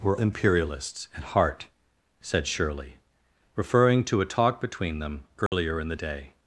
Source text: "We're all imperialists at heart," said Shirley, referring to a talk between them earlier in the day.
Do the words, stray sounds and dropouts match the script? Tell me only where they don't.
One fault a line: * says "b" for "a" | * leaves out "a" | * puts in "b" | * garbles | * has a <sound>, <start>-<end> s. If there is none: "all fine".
* leaves out "all"
* has a dropout, 5.5-5.5 s